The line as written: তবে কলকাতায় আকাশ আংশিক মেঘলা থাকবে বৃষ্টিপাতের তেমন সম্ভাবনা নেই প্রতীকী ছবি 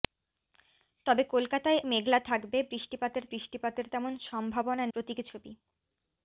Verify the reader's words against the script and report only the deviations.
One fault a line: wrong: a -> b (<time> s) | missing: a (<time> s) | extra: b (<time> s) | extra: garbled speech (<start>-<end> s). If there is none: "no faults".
missing: আকাশ আংশিক (1.8 s)
extra: বৃষ্টিপাতের (3.3 s)
missing: নেই (4.9 s)